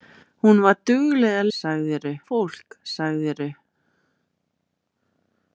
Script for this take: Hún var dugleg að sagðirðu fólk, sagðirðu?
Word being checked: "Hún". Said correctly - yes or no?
yes